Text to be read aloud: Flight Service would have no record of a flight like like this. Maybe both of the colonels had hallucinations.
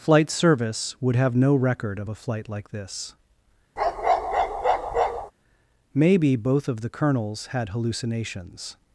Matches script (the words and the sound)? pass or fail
fail